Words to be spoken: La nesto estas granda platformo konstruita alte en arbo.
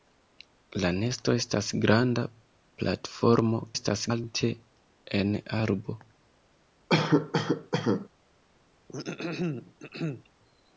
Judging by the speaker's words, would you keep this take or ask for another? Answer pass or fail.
fail